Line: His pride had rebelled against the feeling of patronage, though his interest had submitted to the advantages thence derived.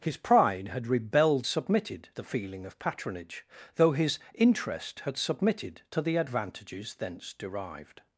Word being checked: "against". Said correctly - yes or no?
no